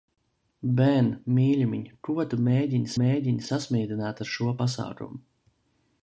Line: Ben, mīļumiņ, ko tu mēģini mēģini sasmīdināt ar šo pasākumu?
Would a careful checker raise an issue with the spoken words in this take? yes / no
no